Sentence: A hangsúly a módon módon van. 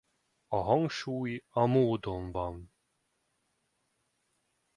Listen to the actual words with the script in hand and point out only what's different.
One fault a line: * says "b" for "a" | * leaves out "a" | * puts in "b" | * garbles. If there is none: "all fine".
* leaves out "módon"